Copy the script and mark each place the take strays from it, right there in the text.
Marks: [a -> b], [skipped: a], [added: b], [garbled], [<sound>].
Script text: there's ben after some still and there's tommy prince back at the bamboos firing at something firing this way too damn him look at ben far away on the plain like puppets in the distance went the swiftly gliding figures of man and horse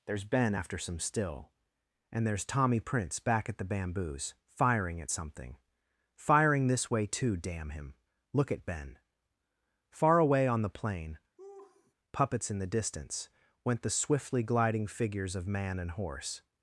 there's ben after some still and there's tommy prince back at the bamboos firing at something firing this way too damn him look at ben far away on the plain [skipped: like] [laugh] puppets in the distance went the swiftly gliding figures of man and horse